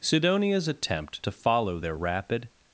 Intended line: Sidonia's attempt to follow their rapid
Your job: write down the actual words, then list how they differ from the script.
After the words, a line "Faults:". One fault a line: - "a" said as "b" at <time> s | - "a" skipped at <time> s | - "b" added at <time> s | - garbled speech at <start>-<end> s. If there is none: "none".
Sidonia's attempt to follow their rapid
Faults:
none